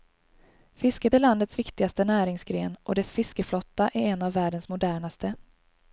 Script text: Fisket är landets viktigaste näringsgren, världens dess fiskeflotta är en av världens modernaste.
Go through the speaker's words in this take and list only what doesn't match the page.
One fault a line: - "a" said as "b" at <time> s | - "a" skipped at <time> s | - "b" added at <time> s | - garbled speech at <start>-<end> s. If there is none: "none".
- "världens" said as "och" at 2.8 s